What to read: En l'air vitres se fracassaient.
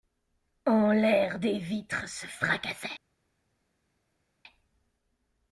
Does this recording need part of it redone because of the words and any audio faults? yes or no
yes